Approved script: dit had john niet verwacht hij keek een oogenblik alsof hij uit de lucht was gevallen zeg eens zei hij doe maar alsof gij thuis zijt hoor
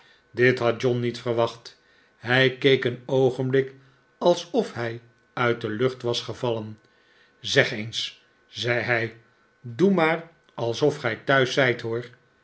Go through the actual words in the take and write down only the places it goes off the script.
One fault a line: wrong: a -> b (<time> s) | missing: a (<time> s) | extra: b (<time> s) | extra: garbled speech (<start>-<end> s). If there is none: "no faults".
no faults